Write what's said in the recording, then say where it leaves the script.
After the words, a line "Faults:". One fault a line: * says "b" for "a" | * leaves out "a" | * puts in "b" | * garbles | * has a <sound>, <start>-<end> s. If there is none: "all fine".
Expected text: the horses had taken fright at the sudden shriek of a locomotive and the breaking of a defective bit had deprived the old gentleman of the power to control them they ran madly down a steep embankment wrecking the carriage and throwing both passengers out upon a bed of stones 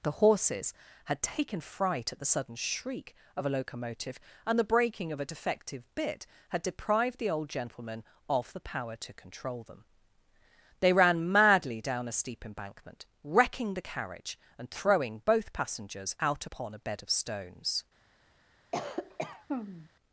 the horses had taken fright at the sudden shriek of a locomotive and the breaking of a defective bit had deprived the old gentleman of the power to control them they ran madly down a steep embankment wrecking the carriage and throwing both passengers out upon a bed of stones
Faults:
* has a cough, 18.7-19.9 s